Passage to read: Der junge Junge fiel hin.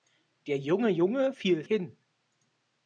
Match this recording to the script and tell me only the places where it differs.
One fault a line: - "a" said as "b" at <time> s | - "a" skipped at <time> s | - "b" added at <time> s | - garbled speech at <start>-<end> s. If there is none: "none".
none